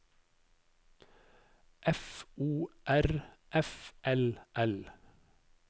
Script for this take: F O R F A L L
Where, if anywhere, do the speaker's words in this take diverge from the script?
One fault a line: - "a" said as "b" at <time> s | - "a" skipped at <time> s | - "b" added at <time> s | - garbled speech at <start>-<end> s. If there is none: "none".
- "A" skipped at 3.9 s